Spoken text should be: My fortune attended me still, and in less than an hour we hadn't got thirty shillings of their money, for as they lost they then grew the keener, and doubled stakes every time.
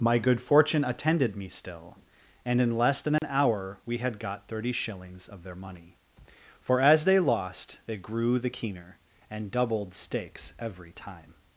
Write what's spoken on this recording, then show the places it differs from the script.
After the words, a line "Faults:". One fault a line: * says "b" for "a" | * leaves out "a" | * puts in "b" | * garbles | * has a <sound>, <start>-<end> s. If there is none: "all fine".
My good fortune attended me still, and in less than an hour we had got thirty shillings of their money, for as they lost they grew the keener, and doubled stakes every time.
Faults:
* puts in "good"
* has a dropout, 3.2-3.2 s
* says "had" for "hadn't"
* leaves out "then"